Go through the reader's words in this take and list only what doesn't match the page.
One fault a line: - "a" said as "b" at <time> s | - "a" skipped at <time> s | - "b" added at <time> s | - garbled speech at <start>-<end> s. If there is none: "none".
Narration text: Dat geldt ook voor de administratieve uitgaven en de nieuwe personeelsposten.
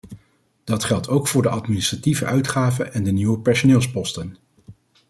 none